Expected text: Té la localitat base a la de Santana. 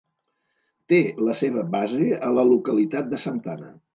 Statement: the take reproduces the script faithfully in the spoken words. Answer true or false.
false